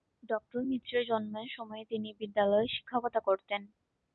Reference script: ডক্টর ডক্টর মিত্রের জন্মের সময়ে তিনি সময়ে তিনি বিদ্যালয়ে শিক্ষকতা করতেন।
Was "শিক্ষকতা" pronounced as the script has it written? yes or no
yes